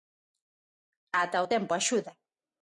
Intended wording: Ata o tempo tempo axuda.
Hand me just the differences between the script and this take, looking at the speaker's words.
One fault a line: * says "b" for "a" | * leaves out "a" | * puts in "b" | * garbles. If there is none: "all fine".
* leaves out "tempo"